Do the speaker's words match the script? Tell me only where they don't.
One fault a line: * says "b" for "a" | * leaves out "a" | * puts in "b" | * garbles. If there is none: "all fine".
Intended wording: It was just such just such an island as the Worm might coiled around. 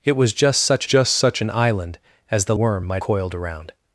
all fine